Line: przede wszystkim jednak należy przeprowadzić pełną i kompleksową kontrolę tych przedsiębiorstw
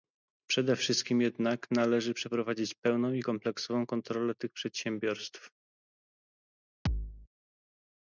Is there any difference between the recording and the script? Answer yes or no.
no